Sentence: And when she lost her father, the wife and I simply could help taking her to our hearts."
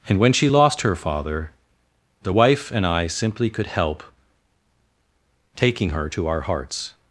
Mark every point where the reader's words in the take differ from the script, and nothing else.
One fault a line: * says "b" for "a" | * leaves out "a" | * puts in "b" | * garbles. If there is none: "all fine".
all fine